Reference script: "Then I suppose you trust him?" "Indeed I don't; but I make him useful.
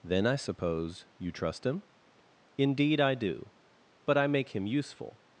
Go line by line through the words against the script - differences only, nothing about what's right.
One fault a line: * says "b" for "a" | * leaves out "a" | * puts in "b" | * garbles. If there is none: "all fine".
* says "do" for "don't"